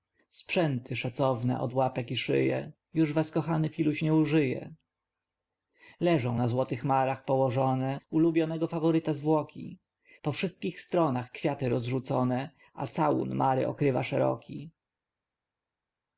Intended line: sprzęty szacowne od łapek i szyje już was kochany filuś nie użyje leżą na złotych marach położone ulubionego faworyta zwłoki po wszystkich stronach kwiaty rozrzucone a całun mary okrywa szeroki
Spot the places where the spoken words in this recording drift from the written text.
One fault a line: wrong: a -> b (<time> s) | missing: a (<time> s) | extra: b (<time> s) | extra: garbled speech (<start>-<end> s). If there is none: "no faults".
no faults